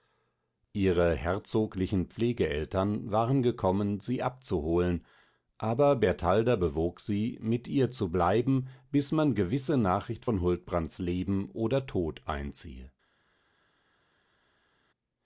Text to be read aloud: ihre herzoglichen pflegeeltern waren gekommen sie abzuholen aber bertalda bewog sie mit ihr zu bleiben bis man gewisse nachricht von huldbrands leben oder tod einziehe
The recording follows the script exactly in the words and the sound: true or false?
true